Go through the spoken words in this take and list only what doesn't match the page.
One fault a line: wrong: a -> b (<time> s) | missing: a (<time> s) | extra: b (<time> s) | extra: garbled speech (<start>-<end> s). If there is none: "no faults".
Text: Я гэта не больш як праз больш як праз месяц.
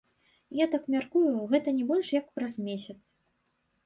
extra: так мяркую (0.8 s)
missing: больш як праз (2.6 s)